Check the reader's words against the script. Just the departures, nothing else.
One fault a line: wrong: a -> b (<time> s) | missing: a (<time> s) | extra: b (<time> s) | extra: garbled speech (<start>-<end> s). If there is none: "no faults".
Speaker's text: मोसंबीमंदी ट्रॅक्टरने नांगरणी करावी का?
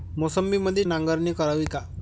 missing: ट्रॅक्टरने (0.8 s)